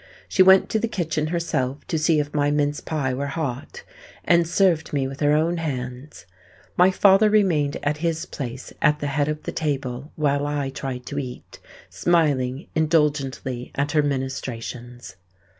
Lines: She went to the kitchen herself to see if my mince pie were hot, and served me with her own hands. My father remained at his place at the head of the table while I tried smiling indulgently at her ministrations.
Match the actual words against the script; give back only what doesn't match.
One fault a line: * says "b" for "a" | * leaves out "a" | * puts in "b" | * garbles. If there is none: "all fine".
* puts in "to eat"